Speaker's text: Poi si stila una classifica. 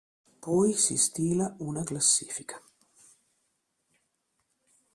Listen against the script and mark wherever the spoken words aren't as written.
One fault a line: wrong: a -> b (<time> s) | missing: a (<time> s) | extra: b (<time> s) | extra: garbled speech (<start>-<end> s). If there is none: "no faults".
no faults